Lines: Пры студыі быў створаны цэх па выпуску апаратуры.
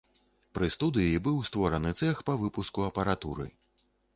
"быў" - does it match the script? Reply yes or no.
yes